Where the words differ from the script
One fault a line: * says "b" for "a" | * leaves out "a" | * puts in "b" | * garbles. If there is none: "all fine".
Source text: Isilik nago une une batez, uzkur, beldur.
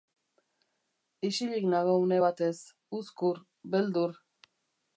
* leaves out "une"